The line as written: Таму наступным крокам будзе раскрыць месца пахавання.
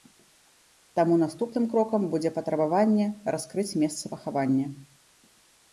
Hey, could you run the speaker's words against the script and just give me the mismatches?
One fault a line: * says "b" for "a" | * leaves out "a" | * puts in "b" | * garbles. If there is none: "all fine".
* puts in "патрабаванне"